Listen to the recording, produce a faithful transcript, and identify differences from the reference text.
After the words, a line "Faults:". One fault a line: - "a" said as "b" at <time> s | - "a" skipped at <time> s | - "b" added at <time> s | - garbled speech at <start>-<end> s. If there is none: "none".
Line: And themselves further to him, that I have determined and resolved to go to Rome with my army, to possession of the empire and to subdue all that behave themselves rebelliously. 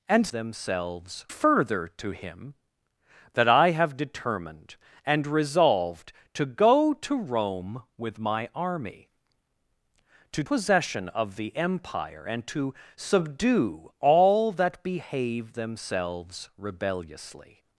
And themselves further to him, that I have determined and resolved to go to Rome with my army, to possession of the empire and to subdue all that behave themselves rebelliously.
Faults:
none